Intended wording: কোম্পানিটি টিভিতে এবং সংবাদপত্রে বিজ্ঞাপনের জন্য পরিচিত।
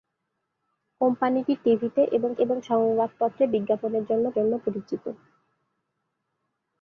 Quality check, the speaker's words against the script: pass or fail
fail